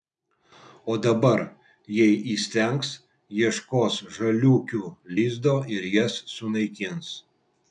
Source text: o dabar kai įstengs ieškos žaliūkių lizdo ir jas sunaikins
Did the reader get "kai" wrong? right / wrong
wrong